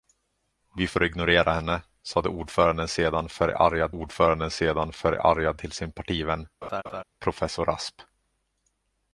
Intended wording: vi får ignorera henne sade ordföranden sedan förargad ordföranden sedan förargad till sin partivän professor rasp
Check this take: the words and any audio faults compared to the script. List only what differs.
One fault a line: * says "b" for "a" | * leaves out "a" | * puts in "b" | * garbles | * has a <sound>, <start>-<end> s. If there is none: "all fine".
* has a laugh, 6.6-7.0 s